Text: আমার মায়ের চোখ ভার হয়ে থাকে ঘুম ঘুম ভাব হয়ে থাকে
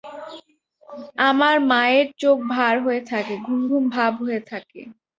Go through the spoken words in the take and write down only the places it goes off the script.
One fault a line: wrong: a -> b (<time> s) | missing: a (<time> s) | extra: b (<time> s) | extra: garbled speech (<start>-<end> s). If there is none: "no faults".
no faults